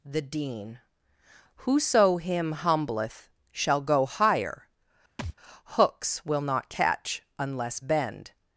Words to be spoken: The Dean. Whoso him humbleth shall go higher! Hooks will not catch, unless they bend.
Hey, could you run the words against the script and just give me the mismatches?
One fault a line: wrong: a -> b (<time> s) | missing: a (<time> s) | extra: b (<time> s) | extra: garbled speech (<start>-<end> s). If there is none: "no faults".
missing: they (7.8 s)